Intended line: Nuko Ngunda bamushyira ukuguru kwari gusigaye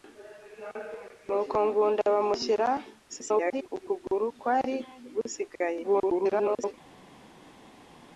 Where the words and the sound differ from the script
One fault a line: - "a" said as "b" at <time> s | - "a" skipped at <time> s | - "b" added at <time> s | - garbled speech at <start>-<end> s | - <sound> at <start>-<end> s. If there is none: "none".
- garbled speech at 3.1-3.7 s
- garbled speech at 5.8-6.7 s